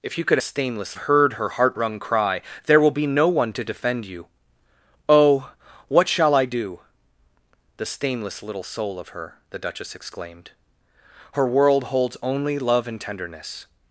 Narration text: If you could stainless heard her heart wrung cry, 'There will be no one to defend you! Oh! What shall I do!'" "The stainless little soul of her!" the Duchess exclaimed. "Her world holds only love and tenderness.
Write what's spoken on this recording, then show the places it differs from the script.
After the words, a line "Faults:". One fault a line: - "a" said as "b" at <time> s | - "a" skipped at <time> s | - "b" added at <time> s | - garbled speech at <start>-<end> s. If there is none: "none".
If you could stainless heard her heart wrung cry, 'There will be no one to defend you! Oh! What shall I do!'" "The stainless little soul of her!" the Duchess exclaimed. "Her world holds only love and tenderness.
Faults:
none